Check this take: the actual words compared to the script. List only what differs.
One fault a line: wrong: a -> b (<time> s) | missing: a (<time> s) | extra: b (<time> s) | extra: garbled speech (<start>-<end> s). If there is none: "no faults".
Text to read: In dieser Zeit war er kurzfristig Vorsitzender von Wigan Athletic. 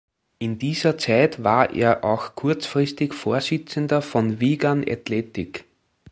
extra: auch (2.0 s)